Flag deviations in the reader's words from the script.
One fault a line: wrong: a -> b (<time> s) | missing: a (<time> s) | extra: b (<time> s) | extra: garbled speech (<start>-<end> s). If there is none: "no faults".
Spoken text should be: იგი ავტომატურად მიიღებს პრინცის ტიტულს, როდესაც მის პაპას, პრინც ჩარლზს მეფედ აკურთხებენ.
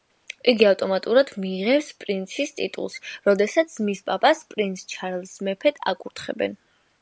no faults